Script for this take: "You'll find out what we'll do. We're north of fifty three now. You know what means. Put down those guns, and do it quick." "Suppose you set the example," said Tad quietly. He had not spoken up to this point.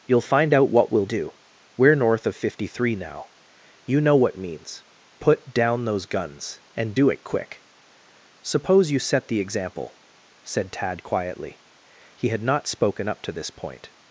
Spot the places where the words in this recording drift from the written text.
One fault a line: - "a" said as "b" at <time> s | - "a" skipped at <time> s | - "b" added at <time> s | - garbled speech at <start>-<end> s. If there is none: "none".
none